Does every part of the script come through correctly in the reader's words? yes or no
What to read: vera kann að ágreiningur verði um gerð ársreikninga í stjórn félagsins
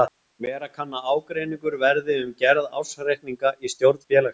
yes